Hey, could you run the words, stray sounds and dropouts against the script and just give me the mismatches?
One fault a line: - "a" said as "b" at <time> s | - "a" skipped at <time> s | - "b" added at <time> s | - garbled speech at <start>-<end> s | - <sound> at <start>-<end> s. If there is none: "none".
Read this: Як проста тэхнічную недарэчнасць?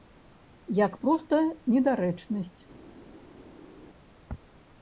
- "тэхнічную" skipped at 1.4 s